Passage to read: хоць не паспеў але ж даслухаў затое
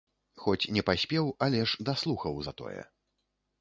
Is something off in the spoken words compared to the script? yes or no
no